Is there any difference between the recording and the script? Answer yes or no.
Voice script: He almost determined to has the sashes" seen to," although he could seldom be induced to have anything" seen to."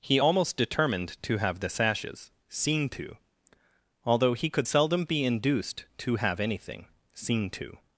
yes